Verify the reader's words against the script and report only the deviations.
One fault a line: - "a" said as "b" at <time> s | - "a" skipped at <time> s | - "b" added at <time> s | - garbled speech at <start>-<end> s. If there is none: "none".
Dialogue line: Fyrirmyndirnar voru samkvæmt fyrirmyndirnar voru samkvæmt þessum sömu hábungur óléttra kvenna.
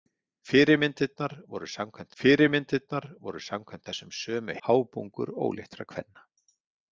none